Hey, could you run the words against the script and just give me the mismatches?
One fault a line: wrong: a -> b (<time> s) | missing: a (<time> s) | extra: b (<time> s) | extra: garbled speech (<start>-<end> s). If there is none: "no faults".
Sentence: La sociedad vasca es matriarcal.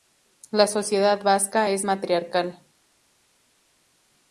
no faults